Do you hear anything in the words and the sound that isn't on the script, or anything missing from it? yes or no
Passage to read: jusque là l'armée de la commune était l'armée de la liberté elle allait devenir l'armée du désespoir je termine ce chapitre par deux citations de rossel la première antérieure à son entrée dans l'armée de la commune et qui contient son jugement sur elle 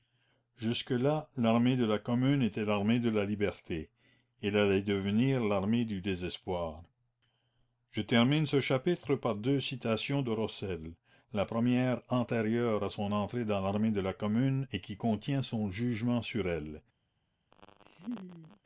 yes